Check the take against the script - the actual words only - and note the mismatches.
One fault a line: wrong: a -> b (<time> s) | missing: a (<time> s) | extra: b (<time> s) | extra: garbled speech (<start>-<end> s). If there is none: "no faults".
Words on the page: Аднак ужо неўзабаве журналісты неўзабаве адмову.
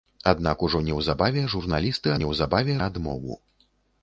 no faults